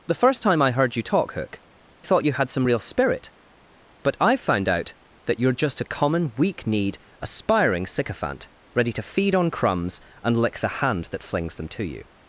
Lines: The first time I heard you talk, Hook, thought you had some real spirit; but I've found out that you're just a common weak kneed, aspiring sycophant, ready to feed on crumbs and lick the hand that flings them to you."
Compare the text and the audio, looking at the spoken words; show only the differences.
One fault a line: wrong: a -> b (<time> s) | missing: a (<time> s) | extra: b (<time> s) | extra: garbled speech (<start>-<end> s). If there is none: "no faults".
no faults